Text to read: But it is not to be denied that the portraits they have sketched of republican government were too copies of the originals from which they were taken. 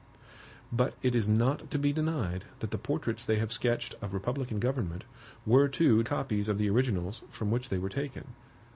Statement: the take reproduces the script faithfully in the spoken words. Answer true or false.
true